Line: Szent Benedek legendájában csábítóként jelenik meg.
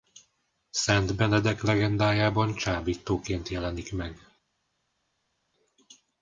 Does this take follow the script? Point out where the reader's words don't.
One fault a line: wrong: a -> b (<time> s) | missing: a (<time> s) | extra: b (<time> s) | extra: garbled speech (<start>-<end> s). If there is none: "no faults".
no faults